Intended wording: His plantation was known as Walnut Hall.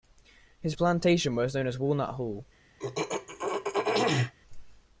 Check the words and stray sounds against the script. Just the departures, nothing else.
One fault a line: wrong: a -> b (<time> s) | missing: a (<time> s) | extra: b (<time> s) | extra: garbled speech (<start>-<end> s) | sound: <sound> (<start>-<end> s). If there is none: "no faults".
sound: throat clearing (2.8-4.3 s)